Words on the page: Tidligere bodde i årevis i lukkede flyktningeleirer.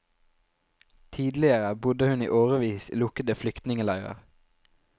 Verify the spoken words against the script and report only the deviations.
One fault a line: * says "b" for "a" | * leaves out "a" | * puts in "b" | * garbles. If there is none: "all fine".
* puts in "hun"